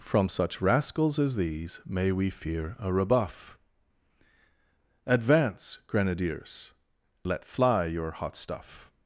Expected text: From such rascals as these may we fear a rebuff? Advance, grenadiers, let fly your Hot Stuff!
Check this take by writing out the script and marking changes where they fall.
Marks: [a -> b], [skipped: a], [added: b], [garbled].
From such rascals as these may we fear a rebuff? Advance, grenadiers, let fly your Hot Stuff!